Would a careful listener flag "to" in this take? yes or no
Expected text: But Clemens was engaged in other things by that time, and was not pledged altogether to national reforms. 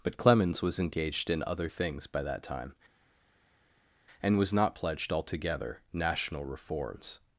yes